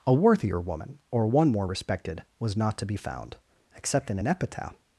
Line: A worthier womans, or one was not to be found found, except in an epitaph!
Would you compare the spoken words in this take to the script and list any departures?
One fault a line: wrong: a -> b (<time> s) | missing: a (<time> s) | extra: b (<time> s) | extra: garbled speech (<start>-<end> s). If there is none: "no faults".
wrong: womans -> woman (0.6 s)
extra: more respected (1.5 s)
missing: found (3.4 s)